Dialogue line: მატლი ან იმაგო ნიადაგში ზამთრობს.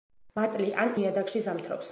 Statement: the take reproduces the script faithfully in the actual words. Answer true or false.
false